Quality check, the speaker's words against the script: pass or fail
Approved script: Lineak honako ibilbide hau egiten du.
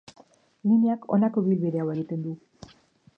pass